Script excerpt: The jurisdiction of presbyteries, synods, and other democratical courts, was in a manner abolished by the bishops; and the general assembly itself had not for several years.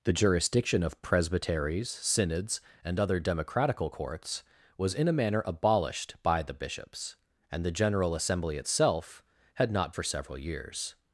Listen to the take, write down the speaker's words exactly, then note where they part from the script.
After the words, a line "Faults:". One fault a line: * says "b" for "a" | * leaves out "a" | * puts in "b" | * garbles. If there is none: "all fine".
The jurisdiction of presbyteries, synods, and other democratical courts, was in a manner abolished by the bishops; and the general assembly itself had not for several years.
Faults:
all fine